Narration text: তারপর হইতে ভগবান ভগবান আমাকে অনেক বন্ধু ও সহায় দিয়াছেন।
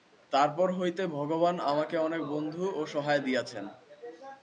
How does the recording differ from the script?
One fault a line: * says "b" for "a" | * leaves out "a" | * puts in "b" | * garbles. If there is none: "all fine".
* leaves out "ভগবান"